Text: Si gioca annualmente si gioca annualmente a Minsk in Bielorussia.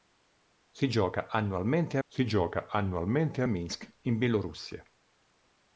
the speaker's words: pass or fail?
pass